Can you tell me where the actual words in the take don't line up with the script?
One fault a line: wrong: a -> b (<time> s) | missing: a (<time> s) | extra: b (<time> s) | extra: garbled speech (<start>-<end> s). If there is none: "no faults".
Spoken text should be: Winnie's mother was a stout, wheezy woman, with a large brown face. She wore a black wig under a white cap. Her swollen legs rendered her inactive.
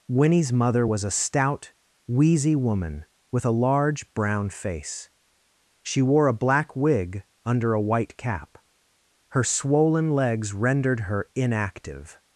no faults